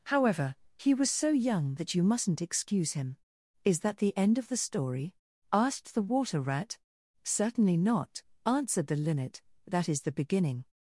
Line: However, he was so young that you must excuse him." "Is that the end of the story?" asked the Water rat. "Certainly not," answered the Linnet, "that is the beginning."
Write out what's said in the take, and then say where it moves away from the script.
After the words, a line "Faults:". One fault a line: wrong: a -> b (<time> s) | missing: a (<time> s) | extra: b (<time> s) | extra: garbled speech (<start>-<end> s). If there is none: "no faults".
However, he was so young that you mustn't excuse him." "Is that the end of the story?" asked the Water rat. "Certainly not," answered the Linnet, "that is the beginning."
Faults:
wrong: must -> mustn't (2.0 s)